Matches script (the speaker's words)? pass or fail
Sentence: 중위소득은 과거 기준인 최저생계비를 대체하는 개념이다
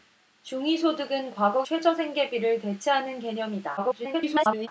fail